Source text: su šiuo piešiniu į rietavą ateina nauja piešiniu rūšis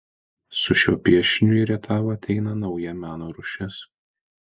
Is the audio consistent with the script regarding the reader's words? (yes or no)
no